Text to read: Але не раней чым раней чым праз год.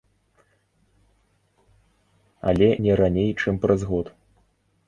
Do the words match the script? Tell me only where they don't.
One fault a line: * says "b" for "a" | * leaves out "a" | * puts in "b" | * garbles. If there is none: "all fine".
* leaves out "раней чым"